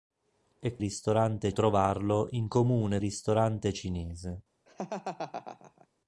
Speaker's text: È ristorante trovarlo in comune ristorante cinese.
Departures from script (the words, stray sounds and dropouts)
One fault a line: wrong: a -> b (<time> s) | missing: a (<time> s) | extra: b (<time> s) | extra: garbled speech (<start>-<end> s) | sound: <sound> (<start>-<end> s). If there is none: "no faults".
sound: laugh (4.7-5.9 s)